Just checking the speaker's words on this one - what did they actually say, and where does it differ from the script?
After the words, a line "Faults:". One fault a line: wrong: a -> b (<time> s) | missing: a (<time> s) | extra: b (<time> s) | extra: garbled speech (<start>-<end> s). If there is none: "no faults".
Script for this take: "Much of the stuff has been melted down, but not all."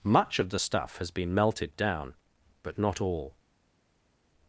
"Much of the stuff has been melted down, but not all."
Faults:
no faults